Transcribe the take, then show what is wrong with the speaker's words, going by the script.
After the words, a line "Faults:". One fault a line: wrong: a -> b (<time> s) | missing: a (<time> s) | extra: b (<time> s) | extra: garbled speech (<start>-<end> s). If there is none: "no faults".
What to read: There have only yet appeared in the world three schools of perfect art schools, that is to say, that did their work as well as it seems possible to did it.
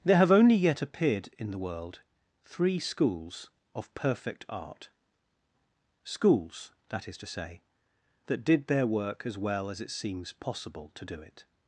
There have only yet appeared in the world three schools of perfect art schools, that is to say, that did their work as well as it seems possible to do it.
Faults:
wrong: did -> do (11.0 s)